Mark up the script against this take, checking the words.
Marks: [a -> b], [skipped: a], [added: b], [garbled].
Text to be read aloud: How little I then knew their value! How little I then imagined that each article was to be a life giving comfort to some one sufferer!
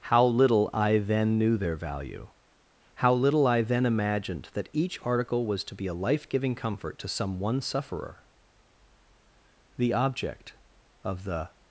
How little I then knew their value! How little I then imagined that each article was to be a life giving comfort to some one sufferer! [added: The object of the]